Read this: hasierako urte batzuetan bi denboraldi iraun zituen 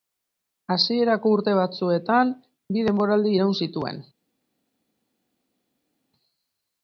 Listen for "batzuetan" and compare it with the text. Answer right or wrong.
right